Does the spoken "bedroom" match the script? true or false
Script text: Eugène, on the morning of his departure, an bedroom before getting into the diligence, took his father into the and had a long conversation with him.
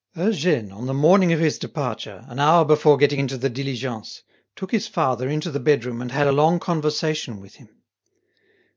false